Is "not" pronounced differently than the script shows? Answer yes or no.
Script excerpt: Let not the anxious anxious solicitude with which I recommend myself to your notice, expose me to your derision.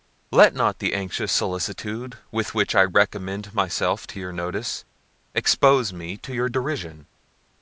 no